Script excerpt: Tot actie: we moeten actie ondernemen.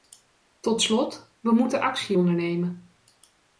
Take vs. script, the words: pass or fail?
fail